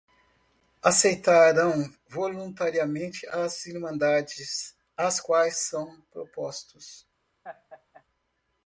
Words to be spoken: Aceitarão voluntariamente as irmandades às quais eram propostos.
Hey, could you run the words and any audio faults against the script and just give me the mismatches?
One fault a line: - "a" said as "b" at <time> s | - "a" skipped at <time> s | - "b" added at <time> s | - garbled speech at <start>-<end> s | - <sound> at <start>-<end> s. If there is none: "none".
- "eram" said as "são" at 5.7 s
- laugh at 7.4-8.0 s